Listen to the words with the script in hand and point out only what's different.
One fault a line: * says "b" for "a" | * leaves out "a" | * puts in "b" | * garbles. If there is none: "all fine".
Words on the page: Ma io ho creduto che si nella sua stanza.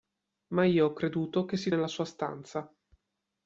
all fine